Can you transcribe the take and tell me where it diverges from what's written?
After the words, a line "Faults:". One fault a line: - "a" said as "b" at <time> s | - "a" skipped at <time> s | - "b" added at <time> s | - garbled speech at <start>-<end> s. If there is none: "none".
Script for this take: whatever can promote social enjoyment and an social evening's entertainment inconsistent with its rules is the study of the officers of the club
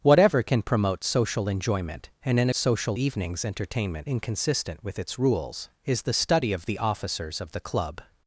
whatever can promote social enjoyment and an social evening's entertainment inconsistent with its rules is the study of the officers of the club
Faults:
none